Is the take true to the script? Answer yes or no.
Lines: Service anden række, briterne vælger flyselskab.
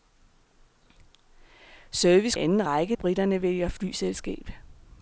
yes